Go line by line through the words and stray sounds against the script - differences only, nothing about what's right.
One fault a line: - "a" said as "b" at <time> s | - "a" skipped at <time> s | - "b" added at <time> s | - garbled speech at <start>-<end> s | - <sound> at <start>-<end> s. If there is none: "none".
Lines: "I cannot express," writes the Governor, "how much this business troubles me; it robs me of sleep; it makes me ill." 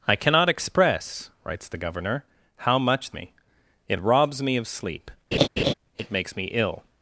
- "this business troubles" skipped at 3.1 s
- laugh at 5.3-5.7 s